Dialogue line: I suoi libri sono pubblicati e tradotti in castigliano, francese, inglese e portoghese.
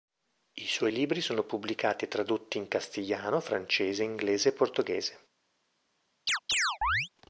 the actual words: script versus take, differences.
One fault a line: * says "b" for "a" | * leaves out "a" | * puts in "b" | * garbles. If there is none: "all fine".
all fine